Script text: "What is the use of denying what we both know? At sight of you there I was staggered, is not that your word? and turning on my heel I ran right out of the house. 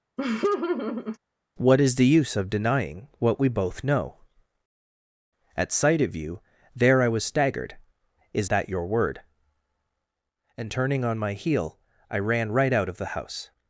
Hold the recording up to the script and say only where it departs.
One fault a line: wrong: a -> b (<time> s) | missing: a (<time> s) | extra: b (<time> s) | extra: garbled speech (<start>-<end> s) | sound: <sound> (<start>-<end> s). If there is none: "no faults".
sound: laugh (0.2-1.2 s)
missing: not (8.5 s)